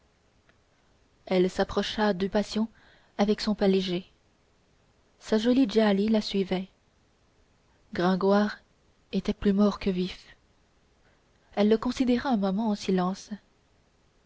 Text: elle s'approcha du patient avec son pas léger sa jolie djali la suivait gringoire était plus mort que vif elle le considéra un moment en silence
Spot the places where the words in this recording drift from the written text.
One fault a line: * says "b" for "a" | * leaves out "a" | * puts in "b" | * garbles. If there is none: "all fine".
all fine